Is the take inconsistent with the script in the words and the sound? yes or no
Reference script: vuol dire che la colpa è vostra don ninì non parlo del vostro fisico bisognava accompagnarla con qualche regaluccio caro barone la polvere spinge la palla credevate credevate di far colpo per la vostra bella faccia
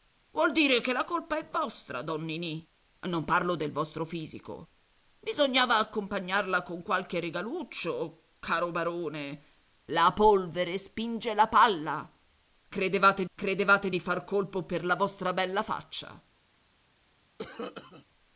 yes